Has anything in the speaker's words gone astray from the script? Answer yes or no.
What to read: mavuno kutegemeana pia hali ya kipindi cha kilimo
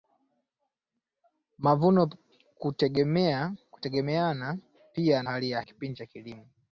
no